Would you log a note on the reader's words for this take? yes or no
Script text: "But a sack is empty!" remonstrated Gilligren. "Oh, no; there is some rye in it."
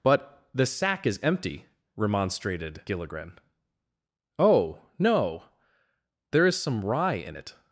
yes